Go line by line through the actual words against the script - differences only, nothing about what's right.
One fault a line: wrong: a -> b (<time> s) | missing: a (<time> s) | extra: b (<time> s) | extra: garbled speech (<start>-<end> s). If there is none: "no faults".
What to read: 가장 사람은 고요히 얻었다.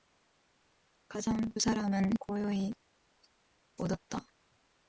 no faults